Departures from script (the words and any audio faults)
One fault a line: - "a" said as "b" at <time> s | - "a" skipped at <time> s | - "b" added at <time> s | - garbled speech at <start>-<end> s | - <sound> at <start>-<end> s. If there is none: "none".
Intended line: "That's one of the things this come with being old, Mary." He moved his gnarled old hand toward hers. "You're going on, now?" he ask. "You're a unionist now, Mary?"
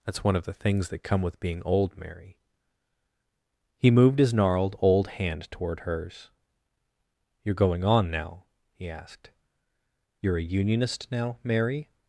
- "this" said as "that" at 0.9 s
- "ask" said as "asked" at 8.9 s